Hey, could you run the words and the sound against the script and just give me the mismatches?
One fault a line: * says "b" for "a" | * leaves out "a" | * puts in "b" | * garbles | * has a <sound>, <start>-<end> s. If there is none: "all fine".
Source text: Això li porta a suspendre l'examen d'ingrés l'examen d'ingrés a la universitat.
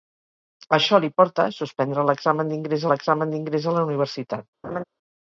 * has a laugh, 4.6-4.8 s